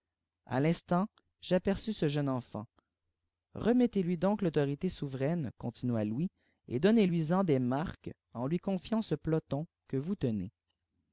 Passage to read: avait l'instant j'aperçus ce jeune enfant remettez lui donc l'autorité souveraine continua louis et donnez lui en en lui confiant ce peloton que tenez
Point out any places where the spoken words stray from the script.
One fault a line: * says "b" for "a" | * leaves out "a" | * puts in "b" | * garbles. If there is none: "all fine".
* says "a" for "avait"
* puts in "des marques"
* puts in "vous"